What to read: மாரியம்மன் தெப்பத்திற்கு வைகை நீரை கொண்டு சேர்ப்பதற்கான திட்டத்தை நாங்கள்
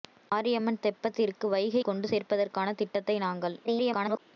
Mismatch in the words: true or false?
true